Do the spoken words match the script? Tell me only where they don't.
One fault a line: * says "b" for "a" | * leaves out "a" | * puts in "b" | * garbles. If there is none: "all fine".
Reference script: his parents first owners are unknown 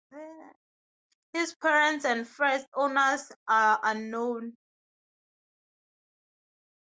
* puts in "and"